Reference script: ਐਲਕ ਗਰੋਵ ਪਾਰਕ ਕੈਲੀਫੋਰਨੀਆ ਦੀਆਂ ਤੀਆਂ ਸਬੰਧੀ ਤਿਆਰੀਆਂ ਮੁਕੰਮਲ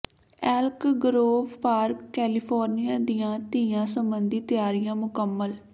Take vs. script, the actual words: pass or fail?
pass